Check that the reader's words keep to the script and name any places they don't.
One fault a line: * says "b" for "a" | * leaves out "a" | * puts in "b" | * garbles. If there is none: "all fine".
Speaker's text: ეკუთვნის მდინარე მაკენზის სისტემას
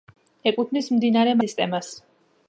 * leaves out "მაკენზის"